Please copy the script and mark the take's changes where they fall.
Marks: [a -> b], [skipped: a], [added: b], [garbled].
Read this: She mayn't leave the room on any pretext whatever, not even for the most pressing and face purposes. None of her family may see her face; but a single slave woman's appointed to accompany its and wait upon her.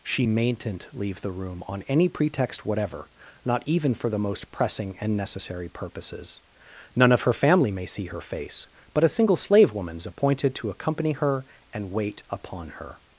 She mayn't leave the room on any pretext whatever, not even for the most pressing and [face -> necessary] purposes. None of her family may see her face; but a single slave woman's appointed to accompany [its -> her] and wait upon her.